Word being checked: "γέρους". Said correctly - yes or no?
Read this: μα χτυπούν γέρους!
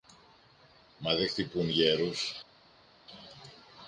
yes